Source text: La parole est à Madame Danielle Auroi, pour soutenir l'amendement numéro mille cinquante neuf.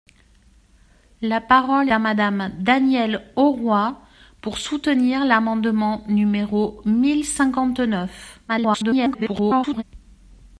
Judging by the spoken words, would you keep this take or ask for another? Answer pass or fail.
fail